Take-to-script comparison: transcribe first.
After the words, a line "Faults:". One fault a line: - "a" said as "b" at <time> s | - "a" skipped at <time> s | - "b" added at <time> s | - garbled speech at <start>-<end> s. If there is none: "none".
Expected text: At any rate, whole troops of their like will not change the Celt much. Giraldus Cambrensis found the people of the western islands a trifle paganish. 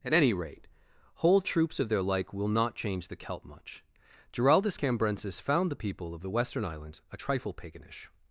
At any rate, whole troops of their like will not change the Celt much. Giraldus Cambrensis found the people of the western islands a trifle paganish.
Faults:
none